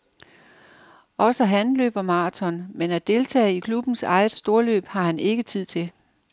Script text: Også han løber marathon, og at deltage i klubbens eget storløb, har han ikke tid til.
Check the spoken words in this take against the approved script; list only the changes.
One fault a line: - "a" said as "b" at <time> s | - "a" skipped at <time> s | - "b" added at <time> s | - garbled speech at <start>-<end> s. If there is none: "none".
- "og" said as "men" at 2.7 s